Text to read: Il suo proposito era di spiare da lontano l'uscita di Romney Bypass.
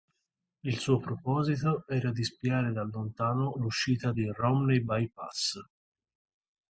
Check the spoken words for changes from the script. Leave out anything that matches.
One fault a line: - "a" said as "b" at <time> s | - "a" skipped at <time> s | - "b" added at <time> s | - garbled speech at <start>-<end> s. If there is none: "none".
none